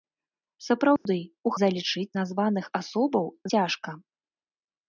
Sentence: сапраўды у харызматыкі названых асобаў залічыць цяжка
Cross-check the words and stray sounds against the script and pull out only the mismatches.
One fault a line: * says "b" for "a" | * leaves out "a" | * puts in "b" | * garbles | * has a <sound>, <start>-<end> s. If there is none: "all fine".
* has a dropout, 1.0-1.1 s
* says "залічыць" for "харызматыкі"
* leaves out "залічыць"